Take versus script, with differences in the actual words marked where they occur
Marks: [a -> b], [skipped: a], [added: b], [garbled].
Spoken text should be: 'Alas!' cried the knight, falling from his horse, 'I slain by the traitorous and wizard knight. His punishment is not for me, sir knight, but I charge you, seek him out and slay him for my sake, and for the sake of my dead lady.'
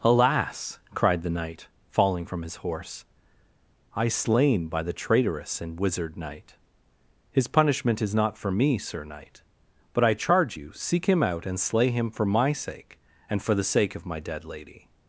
'Alas!' cried the knight, falling from his horse, 'I slain by the traitorous and wizard knight. His punishment is not for me, sir knight, but I charge you, seek him out and slay him for my sake, and for the sake of my dead lady.'